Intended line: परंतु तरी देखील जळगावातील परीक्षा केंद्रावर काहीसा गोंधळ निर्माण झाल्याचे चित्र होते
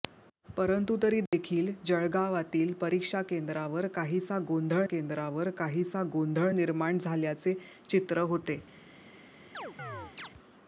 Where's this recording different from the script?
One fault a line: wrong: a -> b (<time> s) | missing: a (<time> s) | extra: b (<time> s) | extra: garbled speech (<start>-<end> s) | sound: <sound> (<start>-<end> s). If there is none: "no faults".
sound: dropout (1.3-1.3 s)
extra: केंद्रावर काहीसा गोंधळ (4.8 s)
sound: chirp (9.5-10.3 s)